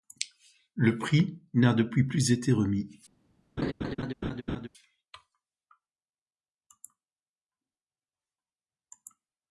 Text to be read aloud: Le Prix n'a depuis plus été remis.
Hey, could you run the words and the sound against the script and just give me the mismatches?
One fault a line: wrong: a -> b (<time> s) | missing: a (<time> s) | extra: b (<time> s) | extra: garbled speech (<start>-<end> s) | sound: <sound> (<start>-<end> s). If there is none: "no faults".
sound: laugh (3.6-4.7 s)